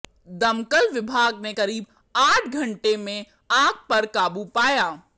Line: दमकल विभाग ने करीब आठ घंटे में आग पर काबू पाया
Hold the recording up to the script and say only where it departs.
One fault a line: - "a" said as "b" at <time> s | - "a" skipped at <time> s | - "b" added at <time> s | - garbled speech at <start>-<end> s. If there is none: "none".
none